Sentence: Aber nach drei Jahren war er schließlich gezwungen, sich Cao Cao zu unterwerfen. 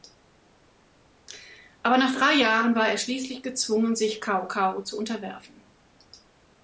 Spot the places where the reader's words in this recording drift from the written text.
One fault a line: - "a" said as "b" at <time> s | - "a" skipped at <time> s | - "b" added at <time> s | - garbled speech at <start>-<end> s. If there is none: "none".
none